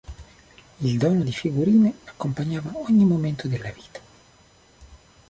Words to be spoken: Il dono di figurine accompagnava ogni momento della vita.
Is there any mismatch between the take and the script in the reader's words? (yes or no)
no